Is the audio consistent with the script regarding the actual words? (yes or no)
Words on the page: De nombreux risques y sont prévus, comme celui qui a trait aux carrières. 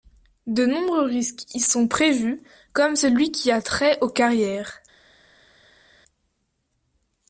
yes